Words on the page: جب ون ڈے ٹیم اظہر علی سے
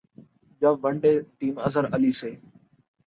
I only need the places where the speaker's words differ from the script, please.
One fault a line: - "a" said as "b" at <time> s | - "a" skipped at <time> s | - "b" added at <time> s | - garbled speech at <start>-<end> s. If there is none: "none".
none